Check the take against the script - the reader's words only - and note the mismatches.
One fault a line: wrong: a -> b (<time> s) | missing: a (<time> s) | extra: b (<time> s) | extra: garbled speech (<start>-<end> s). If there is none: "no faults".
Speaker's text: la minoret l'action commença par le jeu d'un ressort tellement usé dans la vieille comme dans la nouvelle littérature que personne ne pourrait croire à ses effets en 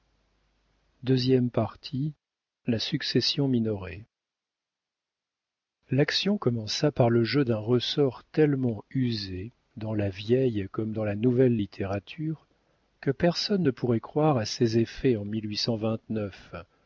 extra: succession (2.8 s)